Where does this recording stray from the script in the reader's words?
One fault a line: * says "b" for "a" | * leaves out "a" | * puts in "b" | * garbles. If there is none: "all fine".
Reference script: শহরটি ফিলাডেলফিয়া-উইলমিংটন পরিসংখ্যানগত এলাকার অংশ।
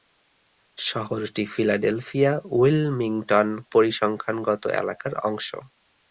all fine